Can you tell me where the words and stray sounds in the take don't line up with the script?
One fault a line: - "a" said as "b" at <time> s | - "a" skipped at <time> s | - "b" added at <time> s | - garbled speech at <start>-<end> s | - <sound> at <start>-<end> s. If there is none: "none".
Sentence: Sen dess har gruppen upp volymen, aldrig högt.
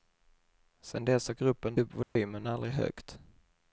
- dropout at 2.0-2.2 s